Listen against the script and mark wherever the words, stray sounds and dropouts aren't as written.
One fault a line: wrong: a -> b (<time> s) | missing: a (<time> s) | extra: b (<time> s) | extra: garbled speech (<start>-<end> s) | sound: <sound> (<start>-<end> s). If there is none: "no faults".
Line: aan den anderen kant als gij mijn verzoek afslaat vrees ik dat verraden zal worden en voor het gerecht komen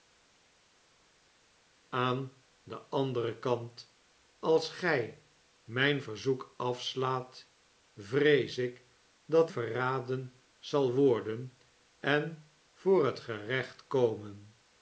no faults